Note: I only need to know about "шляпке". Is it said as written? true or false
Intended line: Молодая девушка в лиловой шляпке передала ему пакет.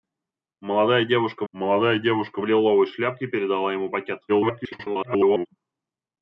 true